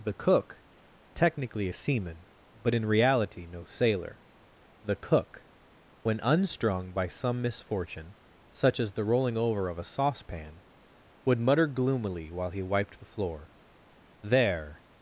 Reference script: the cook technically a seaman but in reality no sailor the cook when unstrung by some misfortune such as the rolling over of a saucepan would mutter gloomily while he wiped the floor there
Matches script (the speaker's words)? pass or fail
pass